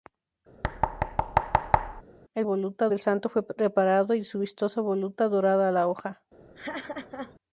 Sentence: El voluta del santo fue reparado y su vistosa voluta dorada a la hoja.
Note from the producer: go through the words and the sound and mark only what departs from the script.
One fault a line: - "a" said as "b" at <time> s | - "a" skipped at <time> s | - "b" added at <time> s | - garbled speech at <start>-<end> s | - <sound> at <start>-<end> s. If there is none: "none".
- thud at 0.6-2.0 s
- laugh at 6.5-7.4 s